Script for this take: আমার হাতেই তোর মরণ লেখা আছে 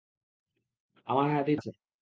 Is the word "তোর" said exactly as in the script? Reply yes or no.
no